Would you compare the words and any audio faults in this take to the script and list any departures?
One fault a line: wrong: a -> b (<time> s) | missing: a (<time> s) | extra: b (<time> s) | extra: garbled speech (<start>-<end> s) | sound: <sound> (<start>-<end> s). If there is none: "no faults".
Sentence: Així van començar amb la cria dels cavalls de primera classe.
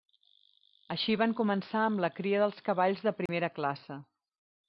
sound: dropout (3.3-3.3 s)